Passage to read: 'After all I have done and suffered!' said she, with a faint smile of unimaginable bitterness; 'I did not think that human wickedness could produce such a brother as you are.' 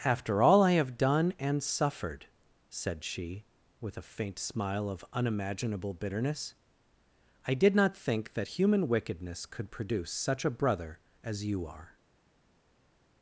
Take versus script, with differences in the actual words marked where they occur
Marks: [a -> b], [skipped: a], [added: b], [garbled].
'After all I have done and suffered!' said she, with a faint smile of unimaginable bitterness; 'I did not think that human wickedness could produce such a brother as you are.'